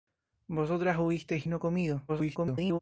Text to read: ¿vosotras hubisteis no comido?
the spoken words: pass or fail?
fail